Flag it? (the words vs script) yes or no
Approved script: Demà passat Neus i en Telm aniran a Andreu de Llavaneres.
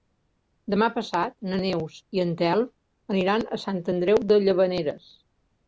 yes